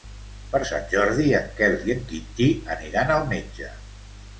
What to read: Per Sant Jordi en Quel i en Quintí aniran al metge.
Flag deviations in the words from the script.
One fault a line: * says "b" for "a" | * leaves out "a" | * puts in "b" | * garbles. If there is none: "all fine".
all fine